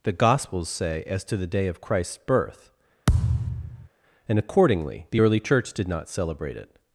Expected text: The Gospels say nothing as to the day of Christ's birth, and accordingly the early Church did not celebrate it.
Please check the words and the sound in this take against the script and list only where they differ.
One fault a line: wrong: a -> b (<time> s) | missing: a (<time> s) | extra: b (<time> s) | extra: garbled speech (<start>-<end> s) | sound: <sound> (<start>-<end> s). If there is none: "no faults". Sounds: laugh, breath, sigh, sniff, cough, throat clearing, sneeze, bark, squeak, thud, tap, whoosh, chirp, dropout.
missing: nothing (1.0 s)
sound: thud (3.1-3.9 s)